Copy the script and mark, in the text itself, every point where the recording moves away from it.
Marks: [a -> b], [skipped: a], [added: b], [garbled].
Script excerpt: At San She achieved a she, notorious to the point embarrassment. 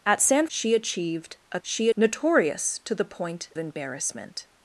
At San She achieved a she, notorious to the point embarrassment.